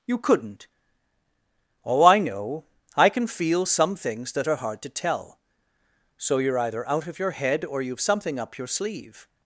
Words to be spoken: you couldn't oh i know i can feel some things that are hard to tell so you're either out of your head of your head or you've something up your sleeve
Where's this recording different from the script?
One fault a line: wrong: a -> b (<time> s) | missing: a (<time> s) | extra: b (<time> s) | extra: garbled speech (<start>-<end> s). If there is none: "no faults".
missing: of your head (7.7 s)